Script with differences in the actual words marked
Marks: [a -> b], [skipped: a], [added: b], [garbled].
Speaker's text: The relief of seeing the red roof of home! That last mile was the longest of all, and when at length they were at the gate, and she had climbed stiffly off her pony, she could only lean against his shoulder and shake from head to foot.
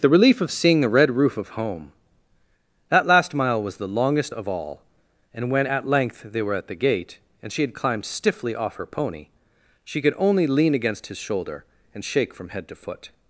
The relief of seeing the red roof of home! That last mile was the longest of all, and when at length they were at the gate, and she had climbed stiffly off her pony, she could only lean against his shoulder and shake from head to foot.